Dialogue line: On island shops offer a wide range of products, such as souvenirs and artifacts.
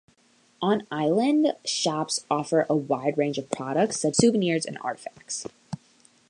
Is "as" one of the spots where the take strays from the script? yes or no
yes